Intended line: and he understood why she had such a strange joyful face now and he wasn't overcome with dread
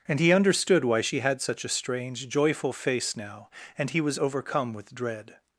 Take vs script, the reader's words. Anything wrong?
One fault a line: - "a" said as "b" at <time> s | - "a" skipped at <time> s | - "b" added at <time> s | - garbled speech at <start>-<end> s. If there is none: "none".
- "wasn't" said as "was" at 4.0 s